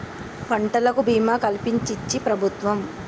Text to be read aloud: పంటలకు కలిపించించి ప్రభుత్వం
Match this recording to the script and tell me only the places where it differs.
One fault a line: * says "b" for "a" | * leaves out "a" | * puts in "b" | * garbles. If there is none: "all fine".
* puts in "భీమా"